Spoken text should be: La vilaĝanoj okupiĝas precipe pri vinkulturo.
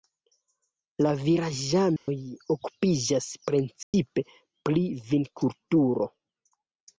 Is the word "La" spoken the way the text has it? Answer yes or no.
yes